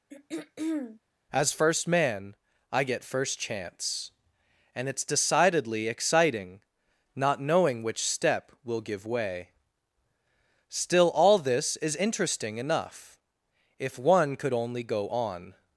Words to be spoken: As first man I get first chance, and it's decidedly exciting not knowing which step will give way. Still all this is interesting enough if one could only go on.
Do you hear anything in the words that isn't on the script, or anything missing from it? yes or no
no